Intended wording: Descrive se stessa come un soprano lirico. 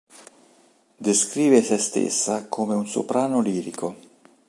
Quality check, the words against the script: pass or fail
pass